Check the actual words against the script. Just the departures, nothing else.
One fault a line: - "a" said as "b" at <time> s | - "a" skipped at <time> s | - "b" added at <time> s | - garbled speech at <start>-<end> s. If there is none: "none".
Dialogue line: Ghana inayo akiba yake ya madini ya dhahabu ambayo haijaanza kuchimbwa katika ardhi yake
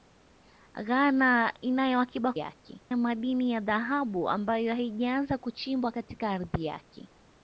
none